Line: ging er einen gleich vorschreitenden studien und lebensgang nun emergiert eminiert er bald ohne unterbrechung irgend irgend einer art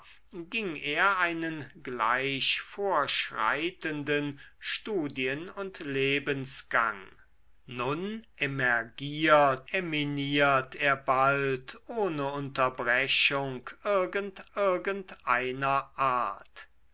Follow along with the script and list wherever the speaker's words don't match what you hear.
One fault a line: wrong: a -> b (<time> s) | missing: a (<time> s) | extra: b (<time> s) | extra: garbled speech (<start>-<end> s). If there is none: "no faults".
no faults